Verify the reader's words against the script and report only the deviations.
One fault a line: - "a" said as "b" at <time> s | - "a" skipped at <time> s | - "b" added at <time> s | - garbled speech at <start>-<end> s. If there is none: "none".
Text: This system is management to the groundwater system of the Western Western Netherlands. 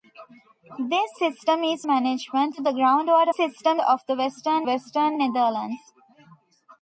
none